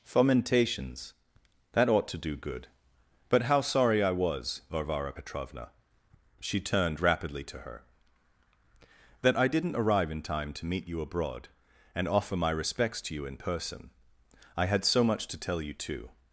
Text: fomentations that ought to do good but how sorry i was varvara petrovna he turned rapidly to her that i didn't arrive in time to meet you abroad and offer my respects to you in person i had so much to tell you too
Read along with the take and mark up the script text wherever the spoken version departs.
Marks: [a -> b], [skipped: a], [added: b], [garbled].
fomentations that ought to do good but how sorry i was varvara petrovna [he -> she] turned rapidly to her that i didn't arrive in time to meet you abroad and offer my respects to you in person i had so much to tell you too